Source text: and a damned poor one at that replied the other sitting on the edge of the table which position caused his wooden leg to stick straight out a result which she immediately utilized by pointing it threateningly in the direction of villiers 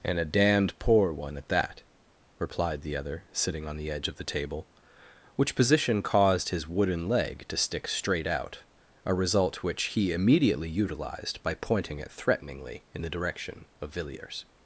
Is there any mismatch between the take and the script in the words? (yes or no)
yes